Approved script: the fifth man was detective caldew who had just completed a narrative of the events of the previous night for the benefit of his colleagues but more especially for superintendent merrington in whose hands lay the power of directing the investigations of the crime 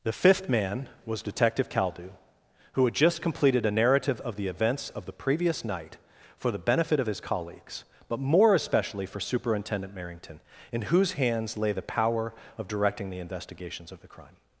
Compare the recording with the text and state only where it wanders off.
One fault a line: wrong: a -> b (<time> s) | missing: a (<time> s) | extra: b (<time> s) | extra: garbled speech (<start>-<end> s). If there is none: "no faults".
no faults